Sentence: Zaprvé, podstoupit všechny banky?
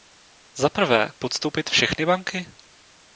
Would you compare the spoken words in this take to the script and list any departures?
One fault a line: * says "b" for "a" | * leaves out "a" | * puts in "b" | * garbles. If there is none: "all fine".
all fine